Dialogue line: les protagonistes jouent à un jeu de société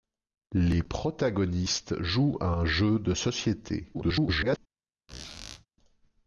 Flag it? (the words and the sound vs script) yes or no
yes